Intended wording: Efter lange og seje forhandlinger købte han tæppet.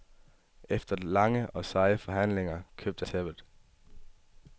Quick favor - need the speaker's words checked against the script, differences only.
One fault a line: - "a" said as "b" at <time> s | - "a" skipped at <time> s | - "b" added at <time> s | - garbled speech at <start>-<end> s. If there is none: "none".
- "han" skipped at 3.0 s